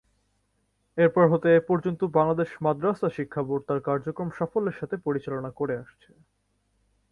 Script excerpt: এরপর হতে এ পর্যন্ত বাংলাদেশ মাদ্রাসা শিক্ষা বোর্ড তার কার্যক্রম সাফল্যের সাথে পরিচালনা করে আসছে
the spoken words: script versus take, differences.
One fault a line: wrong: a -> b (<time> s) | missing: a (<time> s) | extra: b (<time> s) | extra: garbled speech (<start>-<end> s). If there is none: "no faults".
no faults